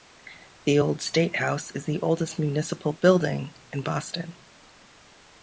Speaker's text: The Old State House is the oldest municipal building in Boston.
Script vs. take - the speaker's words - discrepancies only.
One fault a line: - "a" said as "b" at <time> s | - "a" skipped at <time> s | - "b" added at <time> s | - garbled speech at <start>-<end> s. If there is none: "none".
none